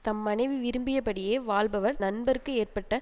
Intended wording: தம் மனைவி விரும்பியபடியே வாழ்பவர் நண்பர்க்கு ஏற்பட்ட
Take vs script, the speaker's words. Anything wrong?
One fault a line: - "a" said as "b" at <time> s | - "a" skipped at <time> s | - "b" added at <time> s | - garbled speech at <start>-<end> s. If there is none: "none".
none